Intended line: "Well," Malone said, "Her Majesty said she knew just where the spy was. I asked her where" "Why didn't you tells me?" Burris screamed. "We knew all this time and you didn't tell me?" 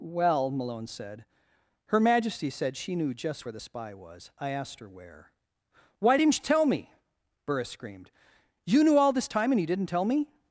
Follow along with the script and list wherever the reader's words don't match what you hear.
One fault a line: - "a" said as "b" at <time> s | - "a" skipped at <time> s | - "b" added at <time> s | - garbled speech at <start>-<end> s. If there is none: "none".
- "tells" said as "tell" at 6.4 s
- "We" said as "You" at 8.6 s